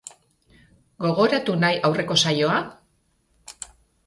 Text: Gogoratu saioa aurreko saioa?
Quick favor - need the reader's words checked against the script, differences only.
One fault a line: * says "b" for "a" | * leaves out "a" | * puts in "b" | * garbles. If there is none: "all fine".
* says "nahi" for "saioa"